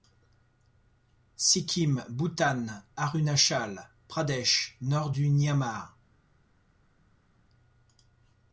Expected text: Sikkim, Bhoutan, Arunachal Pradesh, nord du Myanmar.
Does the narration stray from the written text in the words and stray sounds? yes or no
no